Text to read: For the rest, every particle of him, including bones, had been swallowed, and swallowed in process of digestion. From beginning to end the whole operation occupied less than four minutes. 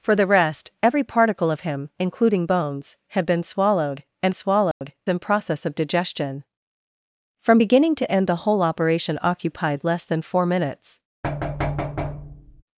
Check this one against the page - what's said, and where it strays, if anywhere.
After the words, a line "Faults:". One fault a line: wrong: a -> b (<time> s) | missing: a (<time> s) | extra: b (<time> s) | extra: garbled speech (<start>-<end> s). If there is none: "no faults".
For the rest, every particle of him, including bones, had been swallowed, and swallowed in process of digestion. From beginning to end the whole operation occupied less than four minutes.
Faults:
no faults